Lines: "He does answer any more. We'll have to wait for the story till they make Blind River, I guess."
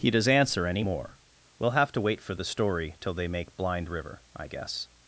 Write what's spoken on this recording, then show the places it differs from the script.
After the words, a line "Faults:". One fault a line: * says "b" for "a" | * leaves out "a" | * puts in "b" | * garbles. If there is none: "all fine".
"He does answer any more. We'll have to wait for the story till they make Blind River, I guess."
Faults:
all fine